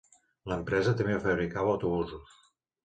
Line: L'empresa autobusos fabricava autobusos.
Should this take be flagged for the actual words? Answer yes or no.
yes